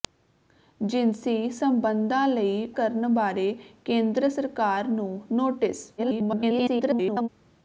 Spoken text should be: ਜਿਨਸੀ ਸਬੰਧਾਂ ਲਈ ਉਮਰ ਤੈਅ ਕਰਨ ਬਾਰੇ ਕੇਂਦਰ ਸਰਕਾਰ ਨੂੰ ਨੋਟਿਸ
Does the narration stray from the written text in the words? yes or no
yes